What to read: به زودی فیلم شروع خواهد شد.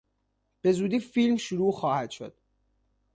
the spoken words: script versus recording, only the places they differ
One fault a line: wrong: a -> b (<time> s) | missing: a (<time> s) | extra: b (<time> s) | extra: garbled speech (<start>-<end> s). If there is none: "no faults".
no faults